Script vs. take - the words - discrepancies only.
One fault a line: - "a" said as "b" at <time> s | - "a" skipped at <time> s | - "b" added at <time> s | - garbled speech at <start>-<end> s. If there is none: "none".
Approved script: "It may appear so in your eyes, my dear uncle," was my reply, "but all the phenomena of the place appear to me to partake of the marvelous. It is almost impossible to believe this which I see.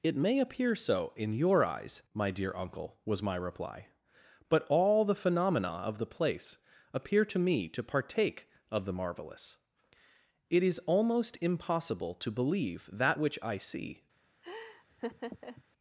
- "this" said as "that" at 12.9 s